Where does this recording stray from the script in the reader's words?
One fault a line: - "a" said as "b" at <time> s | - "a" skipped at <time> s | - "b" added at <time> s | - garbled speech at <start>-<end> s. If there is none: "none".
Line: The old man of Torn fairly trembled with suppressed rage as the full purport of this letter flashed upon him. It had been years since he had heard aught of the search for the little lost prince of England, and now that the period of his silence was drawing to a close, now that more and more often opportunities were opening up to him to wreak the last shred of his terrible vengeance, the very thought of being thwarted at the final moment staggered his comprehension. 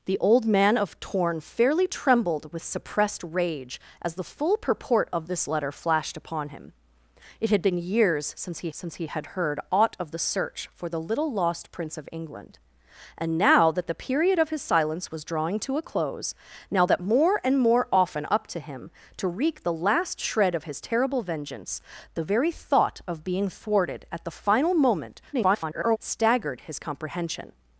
- "since he" added at 8.7 s
- "opportunities were opening" skipped at 18.3 s
- garbled speech at 25.3-26.0 s